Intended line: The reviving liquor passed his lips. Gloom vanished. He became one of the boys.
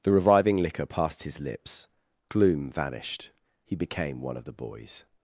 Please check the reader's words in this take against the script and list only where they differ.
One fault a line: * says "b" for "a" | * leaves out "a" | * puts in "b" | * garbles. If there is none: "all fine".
all fine